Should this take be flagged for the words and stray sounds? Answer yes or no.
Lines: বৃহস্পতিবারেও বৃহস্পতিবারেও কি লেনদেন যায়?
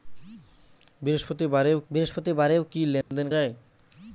yes